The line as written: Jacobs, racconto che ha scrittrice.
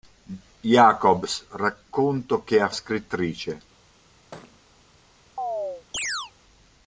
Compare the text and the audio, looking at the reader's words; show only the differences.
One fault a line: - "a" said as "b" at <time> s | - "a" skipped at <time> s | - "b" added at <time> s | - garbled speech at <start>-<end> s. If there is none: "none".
none